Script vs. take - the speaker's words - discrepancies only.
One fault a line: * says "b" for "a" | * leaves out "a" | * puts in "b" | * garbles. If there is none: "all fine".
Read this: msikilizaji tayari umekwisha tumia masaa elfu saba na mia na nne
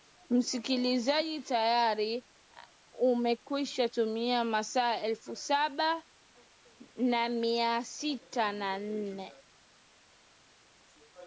* puts in "sita"